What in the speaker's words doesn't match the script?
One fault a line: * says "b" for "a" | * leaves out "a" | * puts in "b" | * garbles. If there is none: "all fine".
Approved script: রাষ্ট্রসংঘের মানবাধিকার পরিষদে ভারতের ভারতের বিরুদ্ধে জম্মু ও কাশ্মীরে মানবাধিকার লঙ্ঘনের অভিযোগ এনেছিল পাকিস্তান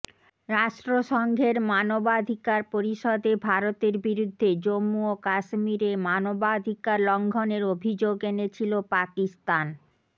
* leaves out "ভারতের"